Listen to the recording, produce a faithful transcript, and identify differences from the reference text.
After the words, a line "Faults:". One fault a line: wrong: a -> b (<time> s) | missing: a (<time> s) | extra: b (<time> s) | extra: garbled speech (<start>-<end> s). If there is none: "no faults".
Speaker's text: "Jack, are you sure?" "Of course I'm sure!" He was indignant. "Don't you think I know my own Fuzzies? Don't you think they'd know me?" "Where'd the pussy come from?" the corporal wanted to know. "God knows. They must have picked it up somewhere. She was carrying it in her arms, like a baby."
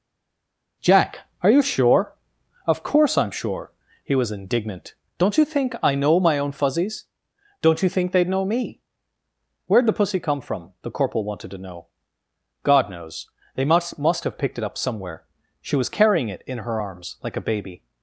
"Jack, are you sure?" "Of course I'm sure!" He was indignant. "Don't you think I know my own Fuzzies? Don't you think they'd know me?" "Where'd the pussy come from?" the corporal wanted to know. "God knows. They must must have picked it up somewhere. She was carrying it in her arms, like a baby."
Faults:
extra: must (14.0 s)